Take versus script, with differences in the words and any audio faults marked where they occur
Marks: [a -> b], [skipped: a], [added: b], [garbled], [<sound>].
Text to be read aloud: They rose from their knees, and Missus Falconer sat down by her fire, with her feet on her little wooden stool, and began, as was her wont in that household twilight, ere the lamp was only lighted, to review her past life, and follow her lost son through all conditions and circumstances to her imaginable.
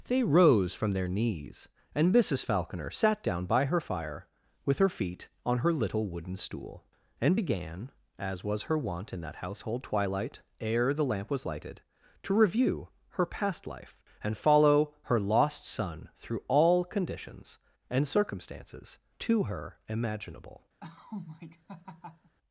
They rose from their knees, and Missus Falconer sat down by her fire, with her feet on her little wooden stool, and began, as was her wont in that household twilight, ere the lamp was [skipped: only] lighted, to review her past life, and follow her lost son through all conditions and circumstances to her imaginable. [laugh]